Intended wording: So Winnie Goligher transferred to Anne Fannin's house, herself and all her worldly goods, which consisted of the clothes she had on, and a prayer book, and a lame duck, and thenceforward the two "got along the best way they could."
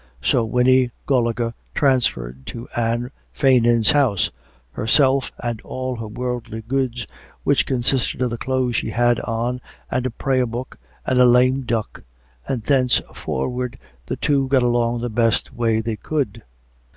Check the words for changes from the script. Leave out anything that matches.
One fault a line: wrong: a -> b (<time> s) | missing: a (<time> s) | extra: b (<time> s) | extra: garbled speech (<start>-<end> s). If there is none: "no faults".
no faults